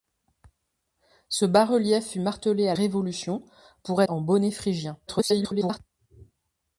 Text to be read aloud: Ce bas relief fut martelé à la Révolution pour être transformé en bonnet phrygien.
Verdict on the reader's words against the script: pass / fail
fail